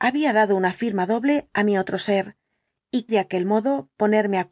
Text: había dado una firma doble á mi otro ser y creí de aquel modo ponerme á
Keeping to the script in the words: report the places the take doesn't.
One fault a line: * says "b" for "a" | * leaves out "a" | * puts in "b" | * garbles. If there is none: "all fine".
* leaves out "creí"